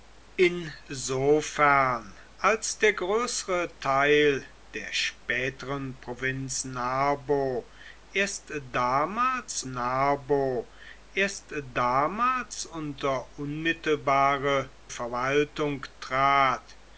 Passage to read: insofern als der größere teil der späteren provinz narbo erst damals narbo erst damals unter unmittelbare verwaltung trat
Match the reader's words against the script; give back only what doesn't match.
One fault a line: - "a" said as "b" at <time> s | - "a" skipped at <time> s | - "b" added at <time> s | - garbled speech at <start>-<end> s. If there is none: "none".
none